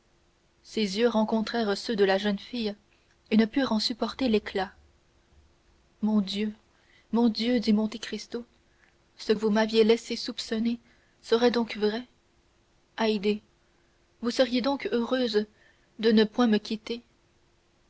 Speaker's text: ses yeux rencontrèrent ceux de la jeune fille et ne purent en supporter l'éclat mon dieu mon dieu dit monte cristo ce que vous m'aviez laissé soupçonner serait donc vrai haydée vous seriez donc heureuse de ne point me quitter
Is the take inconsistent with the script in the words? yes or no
yes